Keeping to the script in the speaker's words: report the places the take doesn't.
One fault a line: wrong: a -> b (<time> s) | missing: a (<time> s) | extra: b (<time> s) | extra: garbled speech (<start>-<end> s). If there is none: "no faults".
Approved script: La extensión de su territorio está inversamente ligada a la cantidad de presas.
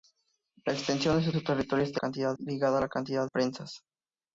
extra: su (1.3 s)
wrong: inversamente -> cantidad (2.0 s)
missing: de (3.3 s)